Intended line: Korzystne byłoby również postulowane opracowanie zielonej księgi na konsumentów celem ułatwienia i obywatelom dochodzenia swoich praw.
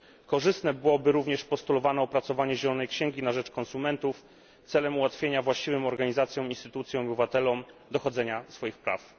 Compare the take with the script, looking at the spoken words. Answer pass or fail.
fail